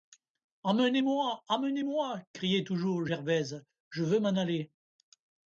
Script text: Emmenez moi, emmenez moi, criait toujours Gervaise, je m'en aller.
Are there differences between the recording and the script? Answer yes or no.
yes